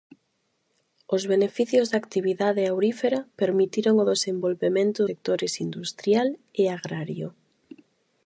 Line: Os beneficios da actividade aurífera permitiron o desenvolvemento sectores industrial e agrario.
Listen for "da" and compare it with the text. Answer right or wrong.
right